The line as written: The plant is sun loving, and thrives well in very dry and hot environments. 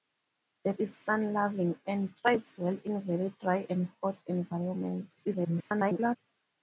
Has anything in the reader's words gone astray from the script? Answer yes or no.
yes